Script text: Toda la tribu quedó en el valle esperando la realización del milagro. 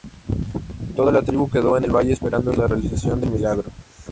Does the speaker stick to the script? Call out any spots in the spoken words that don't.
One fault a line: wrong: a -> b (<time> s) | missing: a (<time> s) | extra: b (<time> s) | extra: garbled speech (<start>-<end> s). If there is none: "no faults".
no faults